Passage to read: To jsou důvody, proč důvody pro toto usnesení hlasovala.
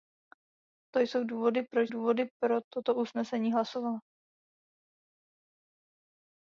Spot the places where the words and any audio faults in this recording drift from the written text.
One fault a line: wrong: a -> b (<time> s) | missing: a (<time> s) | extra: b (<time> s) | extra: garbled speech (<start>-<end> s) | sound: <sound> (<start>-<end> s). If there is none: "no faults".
no faults